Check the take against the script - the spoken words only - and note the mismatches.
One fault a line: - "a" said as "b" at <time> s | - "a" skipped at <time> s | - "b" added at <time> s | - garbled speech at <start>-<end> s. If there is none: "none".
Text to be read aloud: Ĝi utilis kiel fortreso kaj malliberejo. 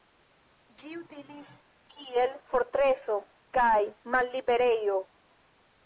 none